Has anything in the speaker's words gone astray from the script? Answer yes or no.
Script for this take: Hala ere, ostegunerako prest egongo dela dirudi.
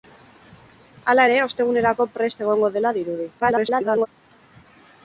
yes